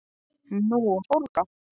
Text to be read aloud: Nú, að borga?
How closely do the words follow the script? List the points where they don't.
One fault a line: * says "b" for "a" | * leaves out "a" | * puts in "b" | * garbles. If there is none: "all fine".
all fine